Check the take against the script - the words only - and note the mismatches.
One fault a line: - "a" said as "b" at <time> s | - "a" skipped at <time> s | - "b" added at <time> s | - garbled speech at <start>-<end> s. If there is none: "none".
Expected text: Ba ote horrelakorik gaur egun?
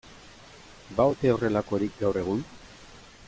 none